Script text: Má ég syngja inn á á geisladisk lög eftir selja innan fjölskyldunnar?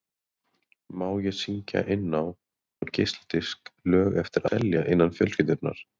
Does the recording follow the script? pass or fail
pass